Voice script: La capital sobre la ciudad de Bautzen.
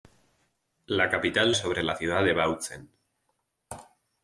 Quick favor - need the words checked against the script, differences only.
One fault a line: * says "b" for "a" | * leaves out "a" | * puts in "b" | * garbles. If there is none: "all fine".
all fine